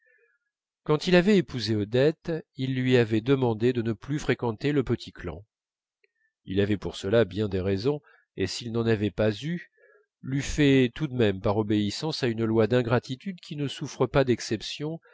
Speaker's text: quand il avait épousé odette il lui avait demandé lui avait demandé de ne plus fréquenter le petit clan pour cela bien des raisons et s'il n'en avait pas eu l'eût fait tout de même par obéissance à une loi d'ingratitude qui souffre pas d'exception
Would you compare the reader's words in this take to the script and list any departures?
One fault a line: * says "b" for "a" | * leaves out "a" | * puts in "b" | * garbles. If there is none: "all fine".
* leaves out "lui avait demandé"
* puts in "il avait"
* puts in "ne"